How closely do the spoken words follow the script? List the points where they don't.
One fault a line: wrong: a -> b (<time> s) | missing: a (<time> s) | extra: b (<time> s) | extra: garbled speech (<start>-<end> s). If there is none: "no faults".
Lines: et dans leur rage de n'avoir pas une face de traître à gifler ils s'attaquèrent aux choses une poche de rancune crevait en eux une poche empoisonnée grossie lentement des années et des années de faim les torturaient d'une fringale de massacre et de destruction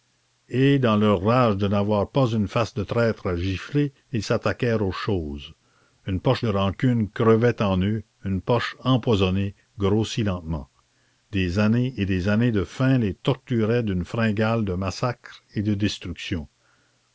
no faults